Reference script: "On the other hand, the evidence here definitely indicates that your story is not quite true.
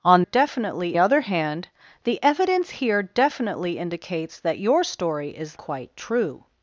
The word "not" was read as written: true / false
false